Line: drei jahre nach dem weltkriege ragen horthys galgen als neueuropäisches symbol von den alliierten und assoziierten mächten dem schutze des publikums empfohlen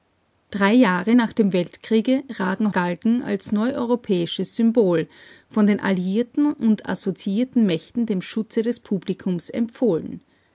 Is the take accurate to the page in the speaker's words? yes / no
no